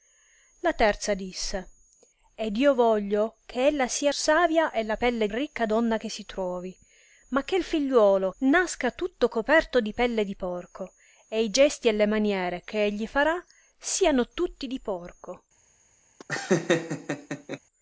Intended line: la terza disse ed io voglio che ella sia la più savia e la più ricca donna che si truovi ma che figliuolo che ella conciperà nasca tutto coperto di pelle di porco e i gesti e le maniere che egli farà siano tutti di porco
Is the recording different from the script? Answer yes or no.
yes